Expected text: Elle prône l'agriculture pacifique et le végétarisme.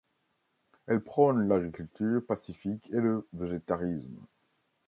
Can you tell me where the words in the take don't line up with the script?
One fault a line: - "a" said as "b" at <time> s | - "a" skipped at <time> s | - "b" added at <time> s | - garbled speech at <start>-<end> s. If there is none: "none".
none